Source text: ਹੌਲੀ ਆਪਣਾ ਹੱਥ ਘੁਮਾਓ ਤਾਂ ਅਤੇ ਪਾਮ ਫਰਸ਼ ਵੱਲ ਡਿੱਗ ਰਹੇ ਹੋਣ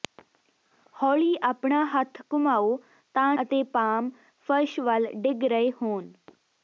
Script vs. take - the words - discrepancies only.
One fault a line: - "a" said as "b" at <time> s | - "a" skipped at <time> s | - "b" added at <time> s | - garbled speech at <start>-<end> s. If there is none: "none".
none